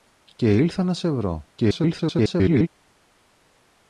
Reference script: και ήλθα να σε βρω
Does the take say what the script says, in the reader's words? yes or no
no